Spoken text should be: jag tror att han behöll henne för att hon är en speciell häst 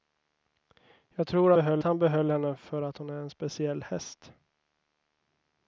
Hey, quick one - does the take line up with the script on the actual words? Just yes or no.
no